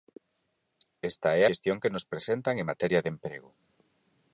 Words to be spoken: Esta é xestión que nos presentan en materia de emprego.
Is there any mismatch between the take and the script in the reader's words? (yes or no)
no